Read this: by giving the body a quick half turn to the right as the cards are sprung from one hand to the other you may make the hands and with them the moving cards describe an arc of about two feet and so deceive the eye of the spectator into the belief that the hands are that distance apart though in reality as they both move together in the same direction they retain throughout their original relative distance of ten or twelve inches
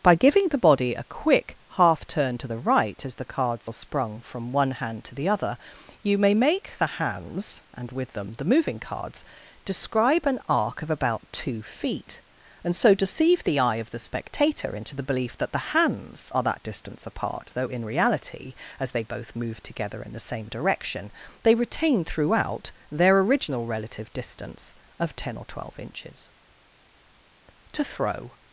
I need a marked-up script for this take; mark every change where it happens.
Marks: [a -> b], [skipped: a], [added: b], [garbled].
by giving the body a quick half turn to the right as the cards are sprung from one hand to the other you may make the hands and with them the moving cards describe an arc of about two feet and so deceive the eye of the spectator into the belief that the hands are that distance apart though in reality as they both move together in the same direction they retain throughout their original relative distance of ten or twelve inches [added: to throw]